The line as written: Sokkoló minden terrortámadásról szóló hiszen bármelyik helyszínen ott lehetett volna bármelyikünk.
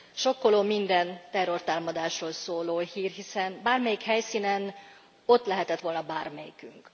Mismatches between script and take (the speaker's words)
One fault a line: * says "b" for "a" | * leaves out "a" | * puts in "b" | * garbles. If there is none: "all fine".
* puts in "hír"